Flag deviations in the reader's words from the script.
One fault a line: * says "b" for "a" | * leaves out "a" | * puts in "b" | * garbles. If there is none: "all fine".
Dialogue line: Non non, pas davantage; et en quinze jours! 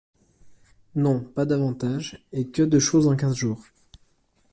* leaves out "non"
* puts in "que de choses"